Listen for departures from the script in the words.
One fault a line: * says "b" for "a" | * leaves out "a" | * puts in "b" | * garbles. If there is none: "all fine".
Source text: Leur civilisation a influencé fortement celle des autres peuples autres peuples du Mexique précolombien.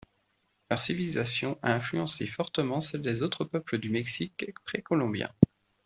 * leaves out "autres peuples"